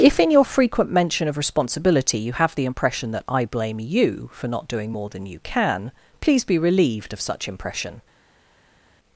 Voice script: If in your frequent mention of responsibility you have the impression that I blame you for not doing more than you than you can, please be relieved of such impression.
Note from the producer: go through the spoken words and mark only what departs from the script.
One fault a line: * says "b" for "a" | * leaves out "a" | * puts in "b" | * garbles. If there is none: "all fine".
* leaves out "than you"